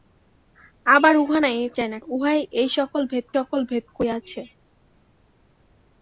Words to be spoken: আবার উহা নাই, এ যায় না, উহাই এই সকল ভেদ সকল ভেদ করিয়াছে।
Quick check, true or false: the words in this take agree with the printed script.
true